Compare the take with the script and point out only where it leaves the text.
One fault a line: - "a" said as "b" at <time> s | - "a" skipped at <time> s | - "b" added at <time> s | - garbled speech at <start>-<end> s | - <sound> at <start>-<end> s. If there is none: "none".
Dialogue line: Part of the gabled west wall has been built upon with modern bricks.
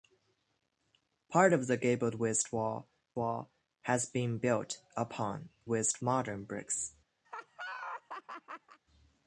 - "wall" added at 3.2 s
- "with" said as "west" at 5.7 s
- laugh at 7.2-8.8 s